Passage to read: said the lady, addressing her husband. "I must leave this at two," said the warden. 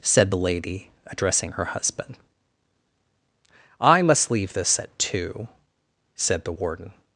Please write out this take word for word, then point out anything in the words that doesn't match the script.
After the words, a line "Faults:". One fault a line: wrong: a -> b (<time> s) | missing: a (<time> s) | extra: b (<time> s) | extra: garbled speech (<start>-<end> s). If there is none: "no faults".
said the lady, addressing her husband. "I must leave this at two," said the warden.
Faults:
no faults